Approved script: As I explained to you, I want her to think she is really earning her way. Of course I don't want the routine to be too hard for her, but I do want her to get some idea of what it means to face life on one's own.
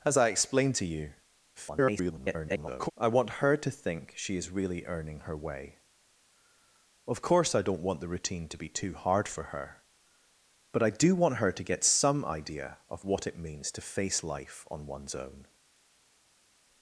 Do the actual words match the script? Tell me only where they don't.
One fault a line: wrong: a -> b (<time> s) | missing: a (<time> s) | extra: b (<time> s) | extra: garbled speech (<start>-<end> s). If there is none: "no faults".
extra: garbled speech (1.6-2.9 s)